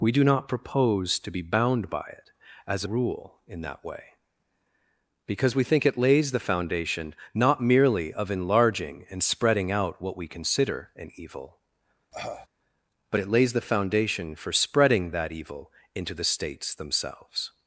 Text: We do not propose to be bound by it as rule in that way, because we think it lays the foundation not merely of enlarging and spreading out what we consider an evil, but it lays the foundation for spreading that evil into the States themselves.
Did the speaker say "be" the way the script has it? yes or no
yes